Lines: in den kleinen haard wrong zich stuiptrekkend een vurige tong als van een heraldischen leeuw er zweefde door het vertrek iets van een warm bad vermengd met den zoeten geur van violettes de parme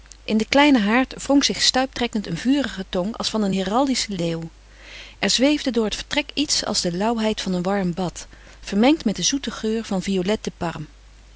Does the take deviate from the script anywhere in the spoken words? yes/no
yes